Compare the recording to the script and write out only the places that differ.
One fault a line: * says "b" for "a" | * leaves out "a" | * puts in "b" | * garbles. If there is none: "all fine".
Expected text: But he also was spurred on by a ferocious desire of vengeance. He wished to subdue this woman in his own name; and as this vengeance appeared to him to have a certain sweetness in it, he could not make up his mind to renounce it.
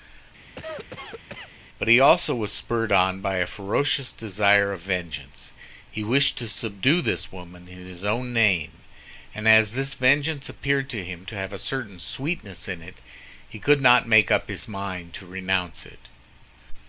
all fine